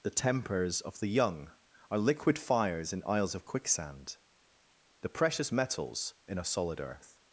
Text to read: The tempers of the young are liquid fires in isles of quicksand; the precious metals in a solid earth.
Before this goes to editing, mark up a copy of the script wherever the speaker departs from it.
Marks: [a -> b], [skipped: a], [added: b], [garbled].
The tempers of the young are liquid fires in isles of quicksand; the precious metals in a solid earth.